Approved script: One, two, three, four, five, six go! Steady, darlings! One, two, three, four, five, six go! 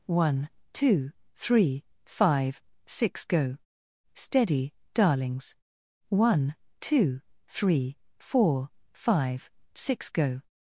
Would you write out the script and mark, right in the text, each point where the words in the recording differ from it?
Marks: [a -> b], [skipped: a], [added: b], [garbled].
One, two, three, [skipped: four,] five, six go! Steady, darlings! One, two, three, four, five, six go!